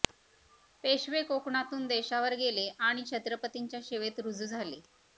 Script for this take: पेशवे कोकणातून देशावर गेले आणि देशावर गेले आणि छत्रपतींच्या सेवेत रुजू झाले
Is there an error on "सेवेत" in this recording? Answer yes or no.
no